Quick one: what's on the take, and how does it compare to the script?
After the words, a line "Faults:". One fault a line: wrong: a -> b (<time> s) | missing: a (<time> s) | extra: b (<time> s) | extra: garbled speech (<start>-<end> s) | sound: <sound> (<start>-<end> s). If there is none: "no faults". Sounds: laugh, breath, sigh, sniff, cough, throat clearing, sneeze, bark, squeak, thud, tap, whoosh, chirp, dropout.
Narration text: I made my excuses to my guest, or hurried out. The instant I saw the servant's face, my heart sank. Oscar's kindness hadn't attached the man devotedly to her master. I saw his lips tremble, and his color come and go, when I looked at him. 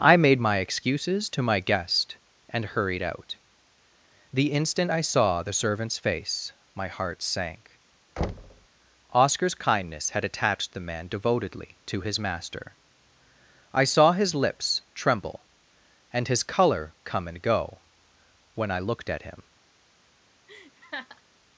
I made my excuses to my guest, and hurried out. The instant I saw the servant's face, my heart sank. Oscar's kindness had attached the man devotedly to his master. I saw his lips tremble, and his color come and go, when I looked at him.
Faults:
wrong: or -> and (2.5 s)
sound: thud (8.2-8.7 s)
wrong: hadn't -> had (10.1 s)
wrong: her -> his (12.0 s)
sound: laugh (20.5-21.2 s)